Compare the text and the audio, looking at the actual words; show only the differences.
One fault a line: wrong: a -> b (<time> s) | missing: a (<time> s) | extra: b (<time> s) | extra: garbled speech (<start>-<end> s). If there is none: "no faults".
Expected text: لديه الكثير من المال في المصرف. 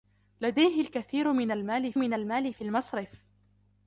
extra: من المال (2.0 s)